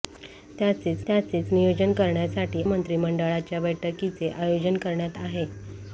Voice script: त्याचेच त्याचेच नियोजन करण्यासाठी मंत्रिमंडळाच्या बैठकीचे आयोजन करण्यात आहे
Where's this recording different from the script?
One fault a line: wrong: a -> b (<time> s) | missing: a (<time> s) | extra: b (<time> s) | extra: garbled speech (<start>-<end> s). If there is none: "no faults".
no faults